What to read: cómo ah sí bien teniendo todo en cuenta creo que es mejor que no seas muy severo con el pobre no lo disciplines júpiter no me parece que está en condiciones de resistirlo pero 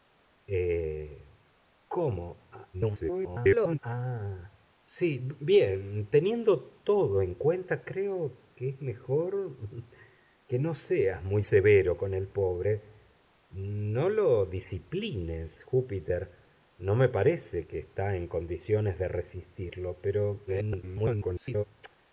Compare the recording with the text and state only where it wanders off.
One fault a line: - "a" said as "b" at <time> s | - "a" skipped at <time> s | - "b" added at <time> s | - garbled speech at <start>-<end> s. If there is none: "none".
- garbled speech at 2.7-3.8 s
- garbled speech at 20.5-21.6 s